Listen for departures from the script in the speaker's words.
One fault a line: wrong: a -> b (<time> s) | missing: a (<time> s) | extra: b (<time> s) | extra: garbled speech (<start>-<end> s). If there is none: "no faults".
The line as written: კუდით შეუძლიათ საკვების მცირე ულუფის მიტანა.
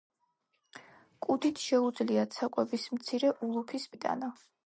no faults